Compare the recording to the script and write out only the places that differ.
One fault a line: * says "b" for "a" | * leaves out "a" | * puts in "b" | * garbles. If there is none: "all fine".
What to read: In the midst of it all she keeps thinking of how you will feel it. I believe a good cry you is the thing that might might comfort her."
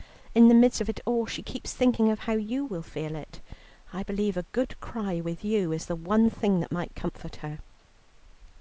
* puts in "with"
* puts in "one"
* leaves out "might"